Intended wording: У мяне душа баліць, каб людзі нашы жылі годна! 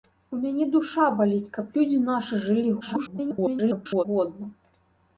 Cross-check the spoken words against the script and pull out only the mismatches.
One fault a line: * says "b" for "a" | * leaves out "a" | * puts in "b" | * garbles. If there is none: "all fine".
* garbles